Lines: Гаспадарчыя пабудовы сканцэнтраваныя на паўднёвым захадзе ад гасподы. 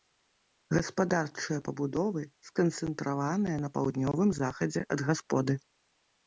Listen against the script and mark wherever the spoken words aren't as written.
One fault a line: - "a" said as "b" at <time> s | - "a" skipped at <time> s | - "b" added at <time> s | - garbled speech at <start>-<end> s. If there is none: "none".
none